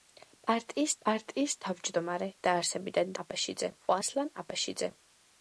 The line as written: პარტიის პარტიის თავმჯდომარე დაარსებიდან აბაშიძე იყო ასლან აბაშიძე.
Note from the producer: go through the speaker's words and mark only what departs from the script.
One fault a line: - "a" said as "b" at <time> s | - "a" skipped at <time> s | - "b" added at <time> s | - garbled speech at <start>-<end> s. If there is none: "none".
none